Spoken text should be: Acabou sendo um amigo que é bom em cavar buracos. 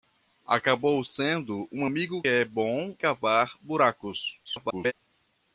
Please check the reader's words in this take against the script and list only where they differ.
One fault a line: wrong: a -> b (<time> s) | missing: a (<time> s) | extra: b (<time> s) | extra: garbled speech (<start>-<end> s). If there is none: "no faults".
missing: que (2.2 s)
missing: em (3.0 s)
extra: garbled speech (4.4-4.9 s)